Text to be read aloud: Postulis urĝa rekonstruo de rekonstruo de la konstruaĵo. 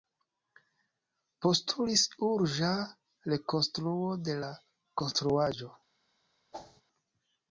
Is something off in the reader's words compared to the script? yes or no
yes